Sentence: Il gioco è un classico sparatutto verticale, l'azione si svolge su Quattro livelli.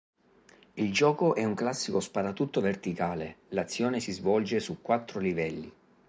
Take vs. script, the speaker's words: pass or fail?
pass